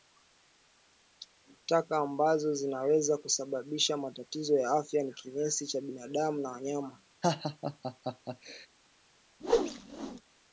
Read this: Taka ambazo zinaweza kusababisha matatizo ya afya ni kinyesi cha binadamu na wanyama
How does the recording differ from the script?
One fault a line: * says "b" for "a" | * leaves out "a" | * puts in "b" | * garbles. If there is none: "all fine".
all fine